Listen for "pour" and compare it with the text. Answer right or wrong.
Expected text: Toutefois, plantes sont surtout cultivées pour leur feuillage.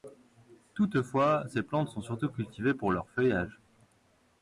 right